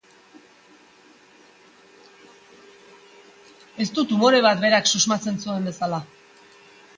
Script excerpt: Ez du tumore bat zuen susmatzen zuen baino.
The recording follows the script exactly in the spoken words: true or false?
false